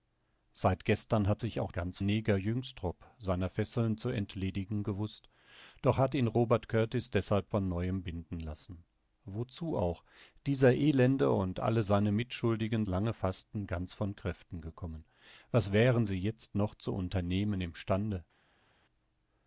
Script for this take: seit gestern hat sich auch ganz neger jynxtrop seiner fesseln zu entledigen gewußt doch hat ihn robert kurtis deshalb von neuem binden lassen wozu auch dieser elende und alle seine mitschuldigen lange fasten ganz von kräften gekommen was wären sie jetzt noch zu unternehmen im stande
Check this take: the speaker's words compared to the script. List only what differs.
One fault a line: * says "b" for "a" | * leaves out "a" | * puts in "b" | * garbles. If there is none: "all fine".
all fine